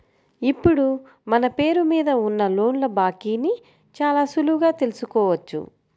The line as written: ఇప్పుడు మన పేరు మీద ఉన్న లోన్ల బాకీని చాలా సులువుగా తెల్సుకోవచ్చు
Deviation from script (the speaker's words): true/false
false